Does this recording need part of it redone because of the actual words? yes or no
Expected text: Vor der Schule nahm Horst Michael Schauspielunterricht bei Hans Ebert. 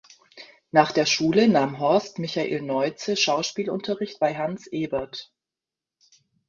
yes